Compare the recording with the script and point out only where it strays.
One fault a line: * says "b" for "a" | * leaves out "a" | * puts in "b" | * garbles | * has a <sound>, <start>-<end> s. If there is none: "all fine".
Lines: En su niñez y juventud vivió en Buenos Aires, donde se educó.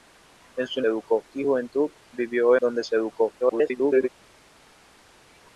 * says "educó" for "niñez"
* leaves out "en Buenos Aires"
* garbles